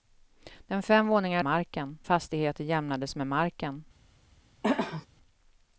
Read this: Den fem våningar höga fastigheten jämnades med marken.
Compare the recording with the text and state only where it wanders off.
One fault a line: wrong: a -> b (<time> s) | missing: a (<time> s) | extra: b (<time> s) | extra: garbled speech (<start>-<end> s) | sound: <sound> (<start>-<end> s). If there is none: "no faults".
wrong: höga -> marken (1.4 s)
sound: throat clearing (4.6-5.1 s)